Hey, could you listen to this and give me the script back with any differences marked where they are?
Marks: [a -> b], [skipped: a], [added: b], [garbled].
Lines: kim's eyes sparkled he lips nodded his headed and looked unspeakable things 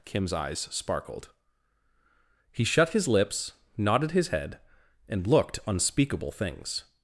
kim's eyes sparkled he [added: shut his] lips nodded his [headed -> head] and looked unspeakable things